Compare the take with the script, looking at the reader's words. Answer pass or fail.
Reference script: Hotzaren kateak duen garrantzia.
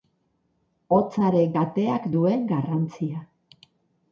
pass